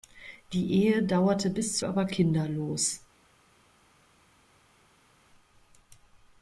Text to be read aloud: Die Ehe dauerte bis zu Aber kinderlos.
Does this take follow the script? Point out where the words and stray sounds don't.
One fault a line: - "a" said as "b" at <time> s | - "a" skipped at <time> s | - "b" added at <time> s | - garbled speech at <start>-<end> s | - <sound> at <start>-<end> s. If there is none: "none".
none